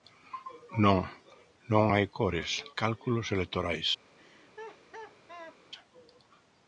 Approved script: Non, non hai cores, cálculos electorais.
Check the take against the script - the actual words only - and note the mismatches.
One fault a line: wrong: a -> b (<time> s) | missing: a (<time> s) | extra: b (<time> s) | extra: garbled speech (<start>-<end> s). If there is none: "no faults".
no faults